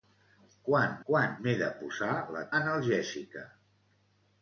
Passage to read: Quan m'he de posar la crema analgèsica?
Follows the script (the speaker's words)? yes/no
no